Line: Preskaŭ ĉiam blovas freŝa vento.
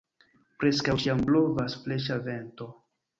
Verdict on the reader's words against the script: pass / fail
pass